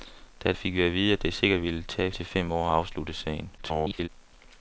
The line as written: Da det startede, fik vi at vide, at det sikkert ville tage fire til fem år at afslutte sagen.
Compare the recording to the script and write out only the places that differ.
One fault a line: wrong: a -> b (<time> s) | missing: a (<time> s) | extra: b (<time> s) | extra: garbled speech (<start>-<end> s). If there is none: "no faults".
missing: det startede (0.5 s)
missing: fire (2.1 s)
extra: garbled speech (3.6-4.1 s)